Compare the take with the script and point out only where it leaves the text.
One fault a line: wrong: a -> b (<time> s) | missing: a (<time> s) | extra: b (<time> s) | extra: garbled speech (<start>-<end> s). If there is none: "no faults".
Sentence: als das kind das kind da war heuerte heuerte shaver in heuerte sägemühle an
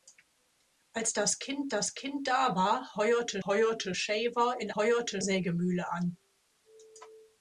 no faults